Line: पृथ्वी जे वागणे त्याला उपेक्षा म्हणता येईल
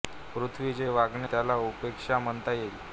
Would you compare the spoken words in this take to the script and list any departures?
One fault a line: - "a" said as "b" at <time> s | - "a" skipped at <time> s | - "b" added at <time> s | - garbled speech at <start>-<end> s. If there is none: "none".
none